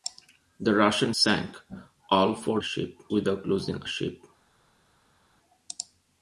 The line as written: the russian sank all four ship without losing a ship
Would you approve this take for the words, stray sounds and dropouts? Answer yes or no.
yes